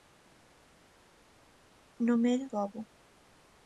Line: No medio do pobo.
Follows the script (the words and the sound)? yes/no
no